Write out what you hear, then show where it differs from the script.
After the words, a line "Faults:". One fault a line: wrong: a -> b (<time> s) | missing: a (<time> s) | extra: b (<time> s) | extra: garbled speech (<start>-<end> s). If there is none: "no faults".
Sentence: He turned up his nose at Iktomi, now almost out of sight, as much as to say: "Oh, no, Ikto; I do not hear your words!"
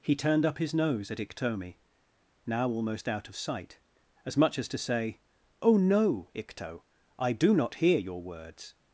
He turned up his nose at Iktomi, now almost out of sight, as much as to say: "Oh, no, Ikto; I do not hear your words!"
Faults:
no faults